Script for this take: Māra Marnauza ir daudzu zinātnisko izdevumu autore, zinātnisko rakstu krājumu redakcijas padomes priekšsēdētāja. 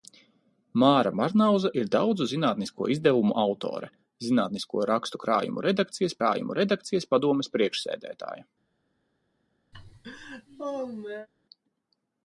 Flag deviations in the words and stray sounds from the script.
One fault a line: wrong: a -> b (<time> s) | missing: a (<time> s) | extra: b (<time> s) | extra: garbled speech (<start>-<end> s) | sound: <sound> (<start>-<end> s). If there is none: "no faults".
extra: krājumu redakcijas (6.2 s)
sound: laugh (9.7-11.3 s)